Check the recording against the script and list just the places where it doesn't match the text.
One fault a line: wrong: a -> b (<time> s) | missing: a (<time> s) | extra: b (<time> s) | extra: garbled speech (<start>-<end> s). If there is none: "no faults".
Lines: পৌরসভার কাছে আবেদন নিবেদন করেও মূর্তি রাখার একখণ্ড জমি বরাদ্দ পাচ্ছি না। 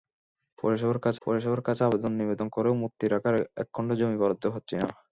extra: পৌরসভার কাছে (1.2 s)